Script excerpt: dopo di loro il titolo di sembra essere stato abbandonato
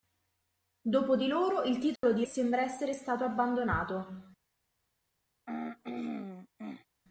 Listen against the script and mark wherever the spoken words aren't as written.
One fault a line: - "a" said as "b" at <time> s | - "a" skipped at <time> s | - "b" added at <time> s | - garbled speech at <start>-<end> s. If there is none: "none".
none